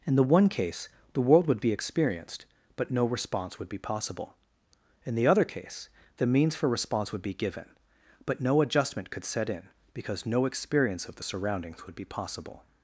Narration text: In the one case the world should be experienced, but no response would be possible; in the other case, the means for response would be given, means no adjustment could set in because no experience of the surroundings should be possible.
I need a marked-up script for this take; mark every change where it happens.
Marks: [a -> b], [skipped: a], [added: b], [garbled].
In the one case the world [should -> would] be experienced, but no response would be possible; in the other case, the means for response would be given, [means -> but] no adjustment could set in because no experience of the surroundings [should -> would] be possible.